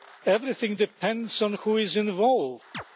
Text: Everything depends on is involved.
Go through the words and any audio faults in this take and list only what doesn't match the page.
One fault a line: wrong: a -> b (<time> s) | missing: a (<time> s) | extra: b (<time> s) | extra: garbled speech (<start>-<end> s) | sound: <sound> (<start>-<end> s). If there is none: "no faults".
extra: who (1.5 s)
sound: chirp (2.7-2.8 s)